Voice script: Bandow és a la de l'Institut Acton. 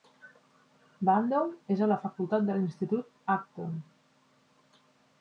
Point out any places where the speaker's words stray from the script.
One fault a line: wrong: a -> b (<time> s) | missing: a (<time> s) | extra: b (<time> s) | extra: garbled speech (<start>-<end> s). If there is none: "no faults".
extra: facultat (2.1 s)